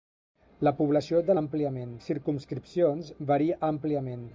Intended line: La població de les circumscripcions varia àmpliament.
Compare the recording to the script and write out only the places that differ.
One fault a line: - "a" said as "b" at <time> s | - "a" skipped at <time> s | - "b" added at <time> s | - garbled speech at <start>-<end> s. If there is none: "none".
- "les" said as "àmpliament" at 1.4 s